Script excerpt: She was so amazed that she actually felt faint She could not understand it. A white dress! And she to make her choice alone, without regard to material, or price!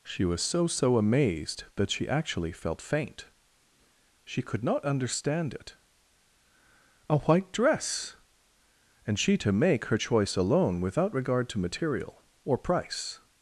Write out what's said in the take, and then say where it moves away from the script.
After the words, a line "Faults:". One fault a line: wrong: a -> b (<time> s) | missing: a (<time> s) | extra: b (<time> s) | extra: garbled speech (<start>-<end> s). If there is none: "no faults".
She was so so amazed that she actually felt faint She could not understand it. A white dress! And she to make her choice alone, without regard to material, or price!
Faults:
extra: so (0.7 s)